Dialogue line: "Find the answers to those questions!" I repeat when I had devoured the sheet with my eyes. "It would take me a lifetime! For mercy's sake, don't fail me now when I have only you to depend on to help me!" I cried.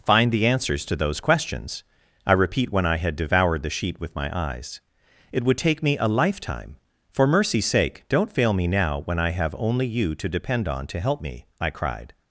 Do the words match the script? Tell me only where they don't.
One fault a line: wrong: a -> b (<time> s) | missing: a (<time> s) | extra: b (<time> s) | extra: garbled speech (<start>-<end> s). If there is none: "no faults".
no faults